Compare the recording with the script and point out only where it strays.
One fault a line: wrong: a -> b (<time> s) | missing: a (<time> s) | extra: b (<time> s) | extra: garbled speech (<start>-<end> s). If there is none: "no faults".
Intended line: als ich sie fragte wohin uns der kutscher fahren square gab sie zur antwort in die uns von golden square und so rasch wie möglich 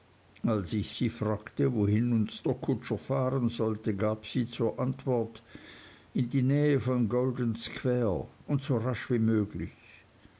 wrong: square -> sollte (3.5 s)
wrong: uns -> nähe (6.4 s)